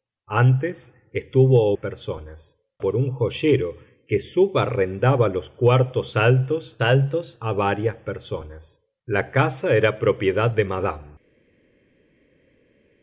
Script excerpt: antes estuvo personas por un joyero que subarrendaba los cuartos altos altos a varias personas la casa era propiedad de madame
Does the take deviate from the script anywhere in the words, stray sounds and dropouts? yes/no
no